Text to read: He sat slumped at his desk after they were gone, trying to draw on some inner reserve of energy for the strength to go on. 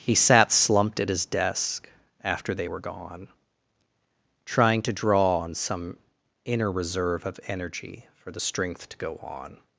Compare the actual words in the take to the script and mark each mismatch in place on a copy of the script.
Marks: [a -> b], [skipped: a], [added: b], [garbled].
He sat slumped at his desk after they were gone, trying to draw on some inner reserve of energy for the strength to go on.